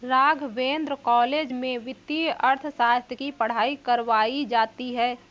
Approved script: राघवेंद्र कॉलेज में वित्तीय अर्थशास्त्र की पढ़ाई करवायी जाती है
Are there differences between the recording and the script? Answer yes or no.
no